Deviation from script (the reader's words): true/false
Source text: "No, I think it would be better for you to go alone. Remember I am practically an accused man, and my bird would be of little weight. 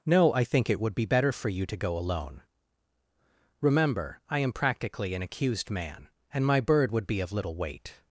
false